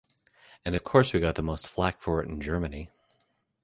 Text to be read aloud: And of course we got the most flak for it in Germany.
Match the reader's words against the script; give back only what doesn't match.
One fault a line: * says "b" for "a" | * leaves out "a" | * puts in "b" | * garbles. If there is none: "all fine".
all fine